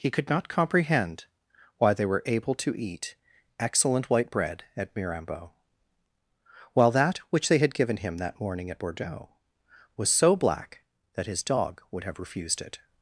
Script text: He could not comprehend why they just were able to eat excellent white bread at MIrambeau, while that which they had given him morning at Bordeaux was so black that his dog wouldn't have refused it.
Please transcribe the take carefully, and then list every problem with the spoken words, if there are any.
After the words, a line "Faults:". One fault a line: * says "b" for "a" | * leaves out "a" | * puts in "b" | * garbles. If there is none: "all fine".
He could not comprehend why they were able to eat excellent white bread at MIrambeau, while that which they had given him that morning at Bordeaux was so black that his dog would have refused it.
Faults:
* leaves out "just"
* puts in "that"
* says "would" for "wouldn't"